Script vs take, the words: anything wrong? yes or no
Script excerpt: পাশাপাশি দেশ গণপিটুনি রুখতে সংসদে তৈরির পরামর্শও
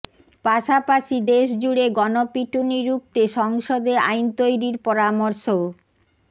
yes